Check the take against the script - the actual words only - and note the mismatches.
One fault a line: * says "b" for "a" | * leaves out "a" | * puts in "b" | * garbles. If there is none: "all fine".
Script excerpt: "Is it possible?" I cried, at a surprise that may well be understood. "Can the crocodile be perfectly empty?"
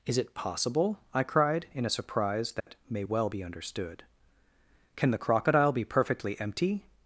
* says "in" for "at"